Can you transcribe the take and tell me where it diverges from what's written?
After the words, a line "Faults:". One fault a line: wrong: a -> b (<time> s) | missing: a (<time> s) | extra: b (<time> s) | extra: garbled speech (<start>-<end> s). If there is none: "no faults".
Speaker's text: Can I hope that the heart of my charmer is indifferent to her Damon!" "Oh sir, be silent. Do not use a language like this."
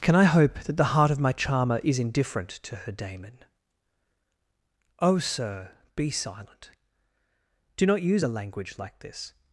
Can I hope that the heart of my charmer is indifferent to her Damon!" "Oh sir, be silent. Do not use a language like this."
Faults:
no faults